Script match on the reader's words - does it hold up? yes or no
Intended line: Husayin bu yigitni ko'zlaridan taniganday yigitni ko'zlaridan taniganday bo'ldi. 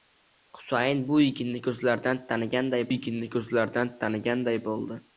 yes